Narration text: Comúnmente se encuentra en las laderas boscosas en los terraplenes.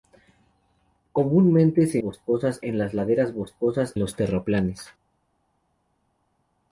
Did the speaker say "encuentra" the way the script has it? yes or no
no